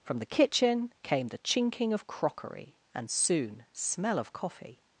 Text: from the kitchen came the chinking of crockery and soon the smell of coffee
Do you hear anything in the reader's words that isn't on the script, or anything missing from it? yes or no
yes